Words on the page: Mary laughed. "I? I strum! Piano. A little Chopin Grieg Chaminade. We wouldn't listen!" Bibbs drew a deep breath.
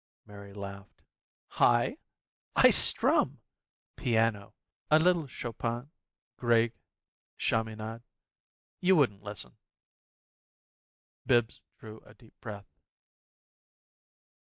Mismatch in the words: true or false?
true